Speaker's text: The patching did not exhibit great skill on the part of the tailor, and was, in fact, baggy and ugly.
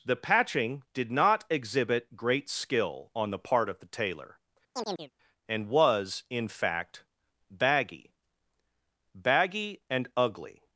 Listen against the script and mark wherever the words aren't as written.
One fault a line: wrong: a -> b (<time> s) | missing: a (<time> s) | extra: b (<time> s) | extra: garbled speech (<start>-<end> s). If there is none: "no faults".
extra: baggy (9.1 s)